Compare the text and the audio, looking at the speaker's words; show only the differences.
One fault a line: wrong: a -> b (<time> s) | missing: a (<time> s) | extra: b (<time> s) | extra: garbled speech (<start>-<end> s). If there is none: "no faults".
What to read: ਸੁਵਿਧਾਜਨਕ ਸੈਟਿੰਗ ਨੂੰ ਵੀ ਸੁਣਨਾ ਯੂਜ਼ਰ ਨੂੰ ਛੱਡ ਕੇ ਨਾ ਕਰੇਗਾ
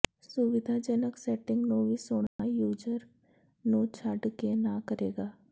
no faults